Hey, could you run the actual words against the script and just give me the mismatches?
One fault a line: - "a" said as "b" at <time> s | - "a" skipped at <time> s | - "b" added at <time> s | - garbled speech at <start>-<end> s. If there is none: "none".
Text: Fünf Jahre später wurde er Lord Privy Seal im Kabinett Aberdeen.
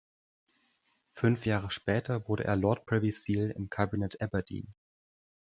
none